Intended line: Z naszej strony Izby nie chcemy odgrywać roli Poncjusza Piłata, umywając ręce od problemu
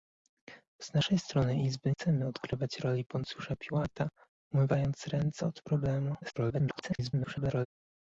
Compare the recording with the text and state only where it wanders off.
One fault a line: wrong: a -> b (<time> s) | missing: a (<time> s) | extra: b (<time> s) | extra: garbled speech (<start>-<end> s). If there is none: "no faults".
missing: nie (1.9 s)
extra: garbled speech (6.2-7.7 s)